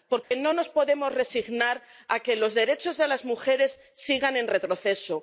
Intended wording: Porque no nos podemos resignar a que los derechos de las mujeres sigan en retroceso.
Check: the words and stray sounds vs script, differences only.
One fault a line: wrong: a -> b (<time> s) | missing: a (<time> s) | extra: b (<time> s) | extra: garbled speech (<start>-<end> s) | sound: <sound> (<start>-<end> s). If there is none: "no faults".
sound: dropout (0.2-0.3 s)